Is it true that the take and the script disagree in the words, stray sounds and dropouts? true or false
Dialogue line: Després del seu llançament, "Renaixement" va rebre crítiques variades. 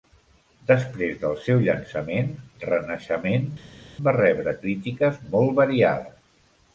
true